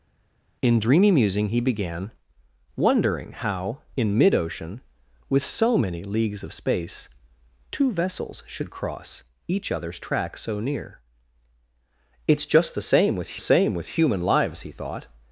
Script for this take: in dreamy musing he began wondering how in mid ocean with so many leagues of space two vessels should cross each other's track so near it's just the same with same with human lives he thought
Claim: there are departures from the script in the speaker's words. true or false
false